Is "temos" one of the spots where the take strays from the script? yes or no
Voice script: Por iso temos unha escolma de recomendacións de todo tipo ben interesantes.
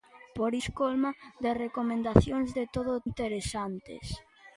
yes